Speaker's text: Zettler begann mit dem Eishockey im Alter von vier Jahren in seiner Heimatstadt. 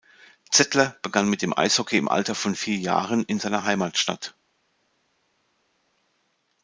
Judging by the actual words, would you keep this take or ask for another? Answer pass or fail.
pass